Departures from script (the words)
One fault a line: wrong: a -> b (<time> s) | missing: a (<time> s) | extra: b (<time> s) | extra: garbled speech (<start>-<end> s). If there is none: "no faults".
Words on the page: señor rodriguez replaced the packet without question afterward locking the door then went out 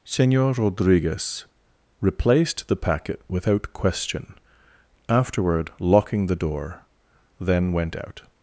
no faults